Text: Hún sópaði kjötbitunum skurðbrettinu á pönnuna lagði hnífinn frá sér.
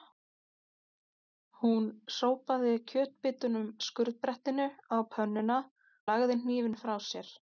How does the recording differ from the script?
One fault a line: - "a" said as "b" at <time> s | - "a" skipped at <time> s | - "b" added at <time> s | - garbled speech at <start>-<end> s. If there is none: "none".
none